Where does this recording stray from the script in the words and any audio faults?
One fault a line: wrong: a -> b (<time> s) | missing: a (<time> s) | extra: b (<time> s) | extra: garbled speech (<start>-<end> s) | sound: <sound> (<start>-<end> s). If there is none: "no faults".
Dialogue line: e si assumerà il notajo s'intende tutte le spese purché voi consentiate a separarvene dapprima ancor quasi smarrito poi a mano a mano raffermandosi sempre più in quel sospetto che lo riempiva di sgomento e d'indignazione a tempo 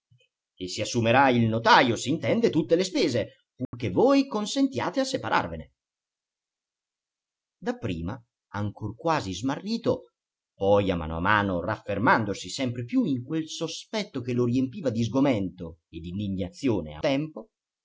sound: dropout (3.6-3.7 s)